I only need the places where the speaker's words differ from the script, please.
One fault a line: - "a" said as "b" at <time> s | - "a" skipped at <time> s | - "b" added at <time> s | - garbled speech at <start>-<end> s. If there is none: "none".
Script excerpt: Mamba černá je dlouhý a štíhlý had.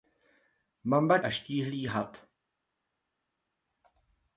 - "černá je dlouhý" skipped at 1.2 s